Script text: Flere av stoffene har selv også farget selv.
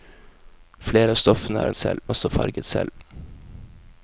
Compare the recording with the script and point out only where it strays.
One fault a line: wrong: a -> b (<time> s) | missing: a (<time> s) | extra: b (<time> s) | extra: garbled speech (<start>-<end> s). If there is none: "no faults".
no faults